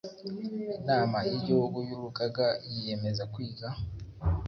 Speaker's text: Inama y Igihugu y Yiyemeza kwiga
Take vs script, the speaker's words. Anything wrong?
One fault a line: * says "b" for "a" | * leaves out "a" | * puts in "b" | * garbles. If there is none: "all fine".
* puts in "Urugaga"